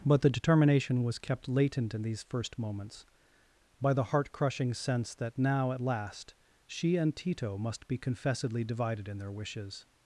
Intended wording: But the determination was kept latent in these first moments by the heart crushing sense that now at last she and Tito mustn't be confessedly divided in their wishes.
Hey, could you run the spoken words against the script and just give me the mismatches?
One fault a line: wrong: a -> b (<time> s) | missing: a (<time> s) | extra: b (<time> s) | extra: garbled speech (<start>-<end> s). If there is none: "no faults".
wrong: mustn't -> must (7.6 s)